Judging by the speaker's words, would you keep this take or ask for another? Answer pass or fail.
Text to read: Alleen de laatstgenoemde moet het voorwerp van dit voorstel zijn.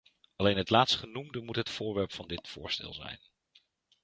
fail